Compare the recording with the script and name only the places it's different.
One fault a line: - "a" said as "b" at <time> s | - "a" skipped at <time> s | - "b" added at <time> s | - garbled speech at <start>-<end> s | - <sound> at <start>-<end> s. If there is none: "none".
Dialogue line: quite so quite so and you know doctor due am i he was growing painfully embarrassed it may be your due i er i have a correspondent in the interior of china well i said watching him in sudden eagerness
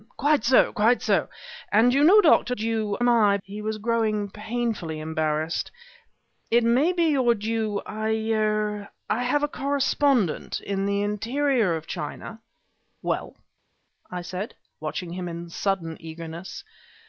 none